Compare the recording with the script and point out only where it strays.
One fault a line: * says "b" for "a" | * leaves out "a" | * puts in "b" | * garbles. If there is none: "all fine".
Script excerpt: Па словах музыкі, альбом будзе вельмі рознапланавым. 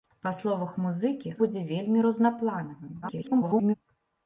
* leaves out "альбом"
* garbles